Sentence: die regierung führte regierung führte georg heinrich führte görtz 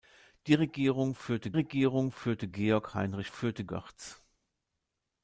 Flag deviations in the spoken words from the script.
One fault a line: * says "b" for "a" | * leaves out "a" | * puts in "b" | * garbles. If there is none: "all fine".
all fine